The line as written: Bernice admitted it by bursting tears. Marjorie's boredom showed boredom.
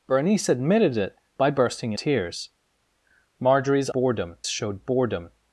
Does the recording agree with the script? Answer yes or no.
yes